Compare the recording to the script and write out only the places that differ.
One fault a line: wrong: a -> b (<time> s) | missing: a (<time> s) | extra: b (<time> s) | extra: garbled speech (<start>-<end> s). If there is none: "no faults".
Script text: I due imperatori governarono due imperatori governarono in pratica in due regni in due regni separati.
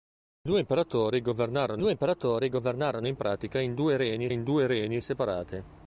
no faults